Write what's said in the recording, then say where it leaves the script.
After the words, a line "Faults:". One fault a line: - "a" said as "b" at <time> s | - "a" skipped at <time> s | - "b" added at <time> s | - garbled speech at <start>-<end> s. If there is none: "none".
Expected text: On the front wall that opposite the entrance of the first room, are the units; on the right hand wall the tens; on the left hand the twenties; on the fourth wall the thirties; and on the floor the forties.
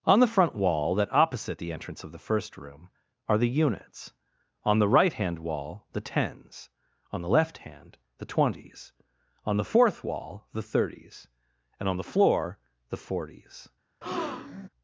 On the front wall that opposite the entrance of the first room, are the units; on the right hand wall the tens; on the left hand the twenties; on the fourth wall the thirties; and on the floor the forties.
Faults:
none